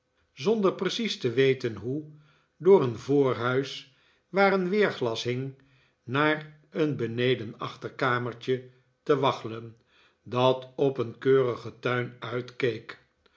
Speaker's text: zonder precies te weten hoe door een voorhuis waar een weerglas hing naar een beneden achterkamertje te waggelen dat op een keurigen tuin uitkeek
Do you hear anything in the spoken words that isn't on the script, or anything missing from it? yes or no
no